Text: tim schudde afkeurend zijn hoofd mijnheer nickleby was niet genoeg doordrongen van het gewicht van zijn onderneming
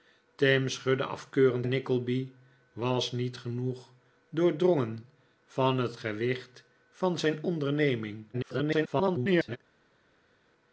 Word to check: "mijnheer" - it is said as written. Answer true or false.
false